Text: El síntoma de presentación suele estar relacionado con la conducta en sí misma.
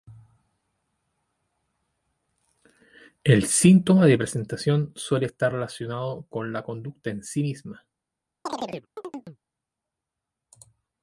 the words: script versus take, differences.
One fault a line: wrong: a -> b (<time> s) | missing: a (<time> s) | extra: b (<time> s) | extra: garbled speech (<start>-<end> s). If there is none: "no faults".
no faults